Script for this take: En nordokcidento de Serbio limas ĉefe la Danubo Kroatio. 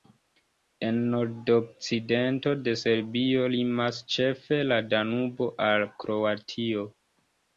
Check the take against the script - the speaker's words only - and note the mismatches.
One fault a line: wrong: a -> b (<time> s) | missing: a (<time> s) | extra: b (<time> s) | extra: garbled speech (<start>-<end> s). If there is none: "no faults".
extra: al (5.7 s)